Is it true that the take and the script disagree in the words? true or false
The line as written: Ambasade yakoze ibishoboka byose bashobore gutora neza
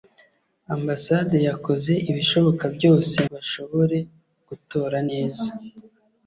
false